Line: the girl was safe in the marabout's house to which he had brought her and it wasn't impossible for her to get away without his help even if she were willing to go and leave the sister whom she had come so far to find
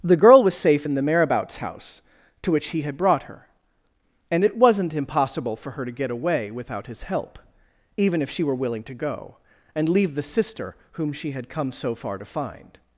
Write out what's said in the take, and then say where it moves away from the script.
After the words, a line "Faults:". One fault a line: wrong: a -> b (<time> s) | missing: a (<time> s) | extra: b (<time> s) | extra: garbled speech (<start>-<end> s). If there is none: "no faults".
the girl was safe in the marabout's house to which he had brought her and it wasn't impossible for her to get away without his help even if she were willing to go and leave the sister whom she had come so far to find
Faults:
no faults